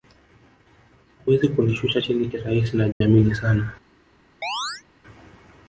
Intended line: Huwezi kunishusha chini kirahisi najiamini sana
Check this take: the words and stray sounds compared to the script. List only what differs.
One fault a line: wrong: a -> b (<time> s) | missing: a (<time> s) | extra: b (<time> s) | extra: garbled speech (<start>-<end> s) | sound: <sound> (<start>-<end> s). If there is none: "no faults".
sound: dropout (2.9-3.0 s)
sound: chirp (4.4-4.8 s)